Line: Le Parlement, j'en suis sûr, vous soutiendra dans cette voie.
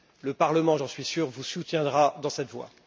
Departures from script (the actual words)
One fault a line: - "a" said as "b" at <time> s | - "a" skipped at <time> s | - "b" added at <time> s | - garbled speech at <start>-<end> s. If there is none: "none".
none